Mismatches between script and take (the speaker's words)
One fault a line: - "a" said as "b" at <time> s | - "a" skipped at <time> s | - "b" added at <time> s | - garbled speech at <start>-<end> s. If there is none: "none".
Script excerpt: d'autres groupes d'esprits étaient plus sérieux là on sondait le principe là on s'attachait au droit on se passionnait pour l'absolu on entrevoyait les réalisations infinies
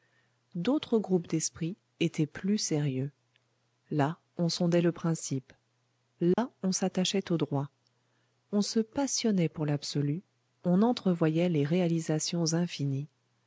none